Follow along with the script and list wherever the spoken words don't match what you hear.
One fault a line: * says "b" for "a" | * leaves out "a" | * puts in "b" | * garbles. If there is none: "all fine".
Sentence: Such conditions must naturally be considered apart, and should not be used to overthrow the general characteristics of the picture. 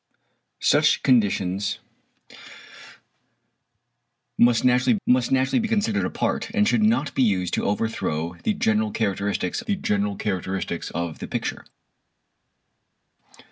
* puts in "must naturally"
* puts in "the general characteristics"